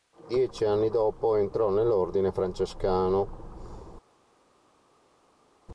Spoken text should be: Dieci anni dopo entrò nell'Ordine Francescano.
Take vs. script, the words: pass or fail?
pass